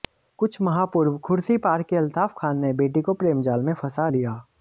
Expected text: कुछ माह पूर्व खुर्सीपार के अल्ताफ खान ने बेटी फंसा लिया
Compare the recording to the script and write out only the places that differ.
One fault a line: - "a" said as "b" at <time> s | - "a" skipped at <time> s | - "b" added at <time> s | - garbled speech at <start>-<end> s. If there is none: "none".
- "को प्रेमजाल में" added at 3.0 s